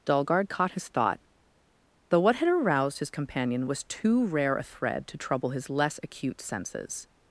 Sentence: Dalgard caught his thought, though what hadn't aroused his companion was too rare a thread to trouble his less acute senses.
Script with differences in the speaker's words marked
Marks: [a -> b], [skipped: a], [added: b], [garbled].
Dalgard caught his thought, though what [hadn't -> had] aroused his companion was too rare a thread to trouble his less acute senses.